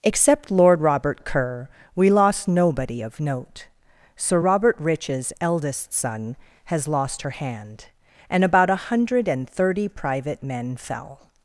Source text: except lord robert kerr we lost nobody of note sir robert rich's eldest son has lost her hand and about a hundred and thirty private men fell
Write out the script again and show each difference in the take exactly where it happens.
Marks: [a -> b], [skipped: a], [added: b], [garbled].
except lord robert kerr we lost nobody of note sir robert rich's eldest son has lost her hand and about a hundred and thirty private men fell